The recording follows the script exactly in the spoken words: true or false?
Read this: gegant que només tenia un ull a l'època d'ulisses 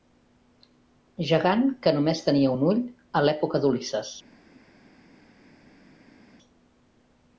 true